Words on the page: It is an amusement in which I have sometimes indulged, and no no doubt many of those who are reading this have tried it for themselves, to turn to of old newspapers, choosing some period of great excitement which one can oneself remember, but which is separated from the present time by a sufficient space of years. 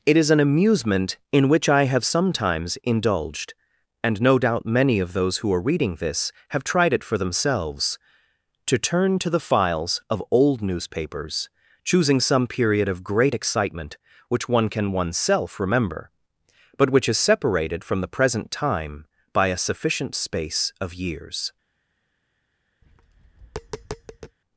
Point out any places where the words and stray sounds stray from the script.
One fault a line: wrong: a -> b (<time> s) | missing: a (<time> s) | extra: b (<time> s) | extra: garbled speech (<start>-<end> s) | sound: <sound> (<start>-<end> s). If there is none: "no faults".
missing: no (4.4 s)
extra: the files (9.3 s)
sound: tap (22.8-24.4 s)